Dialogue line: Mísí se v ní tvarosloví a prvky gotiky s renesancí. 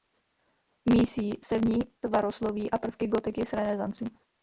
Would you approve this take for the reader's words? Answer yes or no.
yes